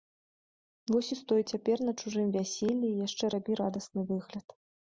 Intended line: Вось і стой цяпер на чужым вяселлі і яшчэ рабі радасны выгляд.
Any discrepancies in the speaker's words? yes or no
no